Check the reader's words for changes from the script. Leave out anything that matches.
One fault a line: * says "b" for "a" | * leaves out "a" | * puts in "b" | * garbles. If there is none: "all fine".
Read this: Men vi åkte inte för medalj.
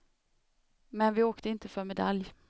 all fine